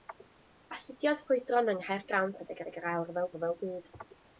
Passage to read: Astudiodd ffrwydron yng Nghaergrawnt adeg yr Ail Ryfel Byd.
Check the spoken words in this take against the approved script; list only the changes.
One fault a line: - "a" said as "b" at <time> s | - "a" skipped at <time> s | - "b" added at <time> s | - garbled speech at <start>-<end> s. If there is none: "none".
- "adeg" added at 2.6 s
- "Ryfel" added at 3.4 s